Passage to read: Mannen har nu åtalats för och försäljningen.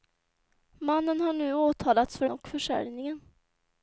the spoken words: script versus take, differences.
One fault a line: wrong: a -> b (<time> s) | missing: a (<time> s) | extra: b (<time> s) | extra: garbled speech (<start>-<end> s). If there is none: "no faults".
no faults